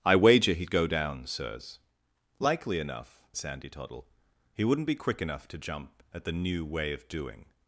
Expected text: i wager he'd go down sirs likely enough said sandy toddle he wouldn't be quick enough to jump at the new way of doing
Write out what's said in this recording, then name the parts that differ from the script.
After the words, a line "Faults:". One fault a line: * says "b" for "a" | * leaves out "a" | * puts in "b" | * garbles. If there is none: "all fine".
i wager he'd go down sirs likely enough sandy toddle he wouldn't be quick enough to jump at the new way of doing
Faults:
* leaves out "said"